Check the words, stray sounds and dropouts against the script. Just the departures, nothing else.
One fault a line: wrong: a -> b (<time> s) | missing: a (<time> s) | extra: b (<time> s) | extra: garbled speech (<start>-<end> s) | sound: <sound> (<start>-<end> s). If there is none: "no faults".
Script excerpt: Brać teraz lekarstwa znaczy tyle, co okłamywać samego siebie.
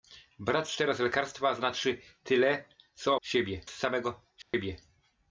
wrong: okłamywać -> siebie (3.2 s)
sound: dropout (4.4-4.5 s)